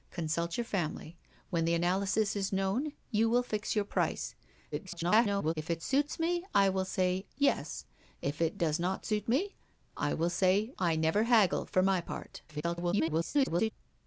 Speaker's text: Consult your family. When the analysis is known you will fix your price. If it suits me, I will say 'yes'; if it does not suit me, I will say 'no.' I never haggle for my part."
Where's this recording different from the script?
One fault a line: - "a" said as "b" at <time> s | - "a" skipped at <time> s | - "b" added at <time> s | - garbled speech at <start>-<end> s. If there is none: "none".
- garbled speech at 4.7-5.5 s
- "no" skipped at 10.7 s
- garbled speech at 12.5-13.7 s